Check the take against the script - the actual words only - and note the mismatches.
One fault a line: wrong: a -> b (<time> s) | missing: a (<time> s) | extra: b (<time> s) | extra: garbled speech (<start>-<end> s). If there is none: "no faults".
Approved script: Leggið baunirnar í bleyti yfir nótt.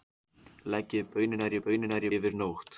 wrong: bleyti -> baunirnar (1.7 s)